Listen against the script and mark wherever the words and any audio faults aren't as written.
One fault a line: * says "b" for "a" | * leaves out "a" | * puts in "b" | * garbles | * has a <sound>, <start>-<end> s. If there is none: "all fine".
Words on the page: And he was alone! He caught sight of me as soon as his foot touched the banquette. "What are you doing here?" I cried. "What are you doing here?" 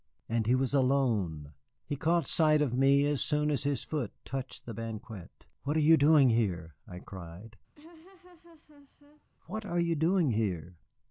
* has a laugh, 7.7-9.3 s